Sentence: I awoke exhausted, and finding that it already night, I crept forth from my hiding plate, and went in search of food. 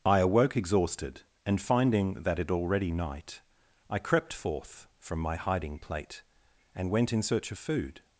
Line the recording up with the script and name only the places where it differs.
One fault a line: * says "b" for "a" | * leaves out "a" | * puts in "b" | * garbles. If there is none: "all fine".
all fine